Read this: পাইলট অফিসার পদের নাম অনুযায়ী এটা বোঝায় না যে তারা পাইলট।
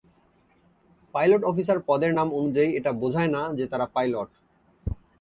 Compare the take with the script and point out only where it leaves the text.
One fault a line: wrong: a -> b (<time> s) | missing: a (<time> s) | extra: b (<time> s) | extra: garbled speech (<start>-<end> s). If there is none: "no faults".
no faults